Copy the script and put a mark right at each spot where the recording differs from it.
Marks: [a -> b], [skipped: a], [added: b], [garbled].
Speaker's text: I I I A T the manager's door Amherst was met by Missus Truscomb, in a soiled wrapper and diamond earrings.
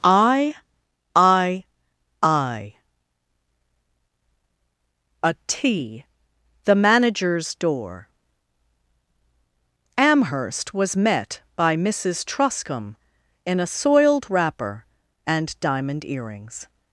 I I I A T the manager's door Amherst was met by Missus Truscomb, in a soiled wrapper and diamond earrings.